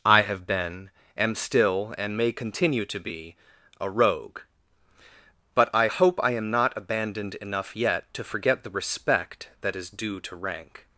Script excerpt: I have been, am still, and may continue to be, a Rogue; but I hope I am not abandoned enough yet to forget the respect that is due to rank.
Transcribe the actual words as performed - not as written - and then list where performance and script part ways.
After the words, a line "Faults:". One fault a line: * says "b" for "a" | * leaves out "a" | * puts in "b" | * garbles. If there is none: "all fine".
I have been, am still, and may continue to be, a Rogue; but I hope I am not abandoned enough yet to forget the respect that is due to rank.
Faults:
all fine